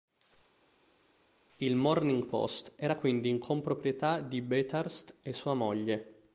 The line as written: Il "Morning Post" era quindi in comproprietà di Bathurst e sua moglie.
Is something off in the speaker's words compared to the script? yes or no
no